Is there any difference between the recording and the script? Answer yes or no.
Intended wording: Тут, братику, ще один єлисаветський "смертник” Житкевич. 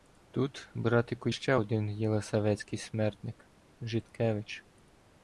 no